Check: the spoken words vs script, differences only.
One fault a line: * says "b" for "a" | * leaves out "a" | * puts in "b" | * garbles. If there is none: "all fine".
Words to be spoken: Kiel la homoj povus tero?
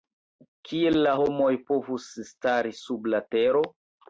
* puts in "stari sub la"